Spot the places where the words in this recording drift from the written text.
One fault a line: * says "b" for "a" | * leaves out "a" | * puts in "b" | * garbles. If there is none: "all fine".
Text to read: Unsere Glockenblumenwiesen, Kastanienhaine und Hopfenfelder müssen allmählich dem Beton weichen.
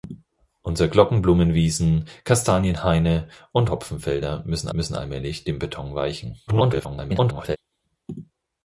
* puts in "müssen"
* garbles